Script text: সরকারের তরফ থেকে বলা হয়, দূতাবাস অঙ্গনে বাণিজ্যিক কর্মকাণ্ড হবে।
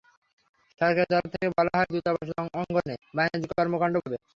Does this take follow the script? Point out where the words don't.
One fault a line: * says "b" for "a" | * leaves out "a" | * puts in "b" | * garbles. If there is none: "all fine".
all fine